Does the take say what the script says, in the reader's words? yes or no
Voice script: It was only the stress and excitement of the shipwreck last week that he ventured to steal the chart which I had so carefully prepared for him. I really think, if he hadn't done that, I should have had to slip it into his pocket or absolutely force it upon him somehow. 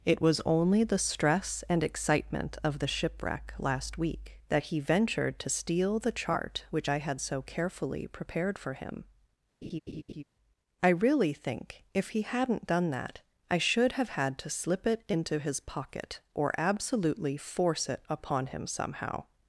yes